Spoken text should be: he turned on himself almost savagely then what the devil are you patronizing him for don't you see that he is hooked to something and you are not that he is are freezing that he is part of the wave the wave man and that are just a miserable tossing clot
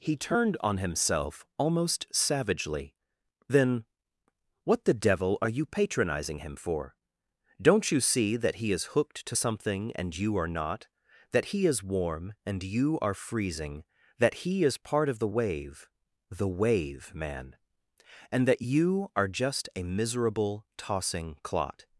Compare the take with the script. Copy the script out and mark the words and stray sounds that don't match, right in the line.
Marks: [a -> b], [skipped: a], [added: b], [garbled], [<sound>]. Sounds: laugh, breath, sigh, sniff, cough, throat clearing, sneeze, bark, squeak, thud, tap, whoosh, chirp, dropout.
he turned on himself almost savagely then what the devil are you patronizing him for don't you see that he is hooked to something and you are not that he is [added: warm and you] are freezing that he is part of the wave the wave man and that [added: you] are just a miserable tossing clot